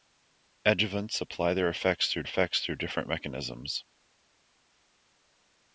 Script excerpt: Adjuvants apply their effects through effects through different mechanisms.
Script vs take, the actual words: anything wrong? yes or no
no